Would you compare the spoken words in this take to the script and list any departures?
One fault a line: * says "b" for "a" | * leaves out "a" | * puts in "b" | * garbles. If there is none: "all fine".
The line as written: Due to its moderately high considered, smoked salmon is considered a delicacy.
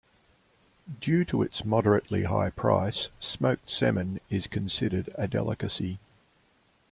* says "price" for "considered"